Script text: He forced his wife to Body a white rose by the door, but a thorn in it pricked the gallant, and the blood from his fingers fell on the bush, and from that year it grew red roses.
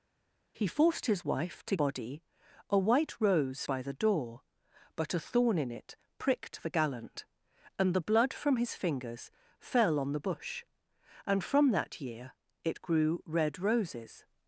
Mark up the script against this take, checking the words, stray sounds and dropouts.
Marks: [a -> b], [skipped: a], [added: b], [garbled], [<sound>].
He forced his wife to Body a white rose by the door, but a thorn in it pricked the gallant, and the blood from his fingers fell on the bush, and from that year it grew red roses.